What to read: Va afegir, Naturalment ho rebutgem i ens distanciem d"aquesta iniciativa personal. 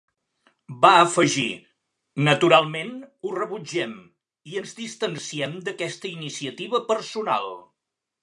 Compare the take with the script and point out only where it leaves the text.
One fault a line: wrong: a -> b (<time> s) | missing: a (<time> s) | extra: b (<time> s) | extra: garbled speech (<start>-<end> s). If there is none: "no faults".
no faults